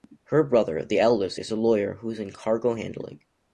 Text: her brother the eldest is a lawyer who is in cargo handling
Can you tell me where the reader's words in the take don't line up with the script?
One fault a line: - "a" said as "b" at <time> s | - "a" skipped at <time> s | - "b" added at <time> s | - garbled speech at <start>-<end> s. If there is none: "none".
none